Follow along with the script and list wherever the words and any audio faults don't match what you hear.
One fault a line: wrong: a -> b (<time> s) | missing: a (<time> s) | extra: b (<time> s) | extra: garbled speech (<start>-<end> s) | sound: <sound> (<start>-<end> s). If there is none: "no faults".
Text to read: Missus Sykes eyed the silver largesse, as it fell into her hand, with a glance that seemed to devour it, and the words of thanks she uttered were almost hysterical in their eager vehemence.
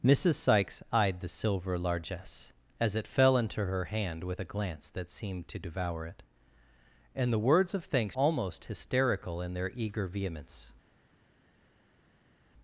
missing: she uttered were (8.2 s)